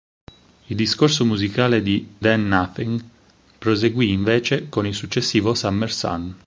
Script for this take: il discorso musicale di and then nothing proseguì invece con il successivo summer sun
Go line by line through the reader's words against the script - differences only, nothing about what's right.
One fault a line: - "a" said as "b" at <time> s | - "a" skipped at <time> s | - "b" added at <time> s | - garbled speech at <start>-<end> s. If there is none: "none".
- "and" skipped at 2.1 s